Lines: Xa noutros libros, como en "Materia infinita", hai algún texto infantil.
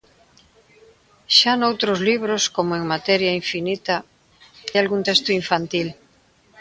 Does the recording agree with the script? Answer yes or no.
no